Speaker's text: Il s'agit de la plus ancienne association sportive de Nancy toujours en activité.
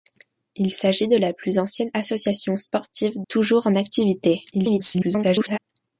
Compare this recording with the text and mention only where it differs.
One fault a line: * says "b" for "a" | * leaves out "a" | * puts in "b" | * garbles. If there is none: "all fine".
* leaves out "de Nancy"
* garbles